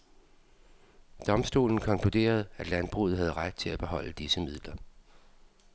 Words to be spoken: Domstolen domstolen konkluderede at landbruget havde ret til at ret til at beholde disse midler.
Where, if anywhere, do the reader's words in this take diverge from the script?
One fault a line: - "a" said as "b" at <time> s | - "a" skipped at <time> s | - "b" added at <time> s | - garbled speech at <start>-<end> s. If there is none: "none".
- "domstolen" skipped at 1.8 s
- "ret til at" skipped at 3.8 s